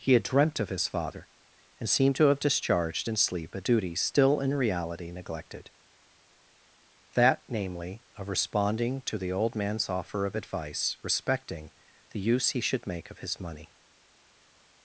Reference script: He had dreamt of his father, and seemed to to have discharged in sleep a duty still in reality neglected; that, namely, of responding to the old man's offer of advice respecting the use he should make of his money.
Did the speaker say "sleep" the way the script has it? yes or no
yes